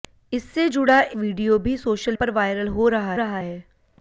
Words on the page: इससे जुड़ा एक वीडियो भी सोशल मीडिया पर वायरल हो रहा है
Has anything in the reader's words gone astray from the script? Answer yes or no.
yes